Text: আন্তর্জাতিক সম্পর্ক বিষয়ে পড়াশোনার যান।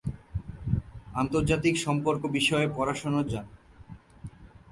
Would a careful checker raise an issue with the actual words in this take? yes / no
no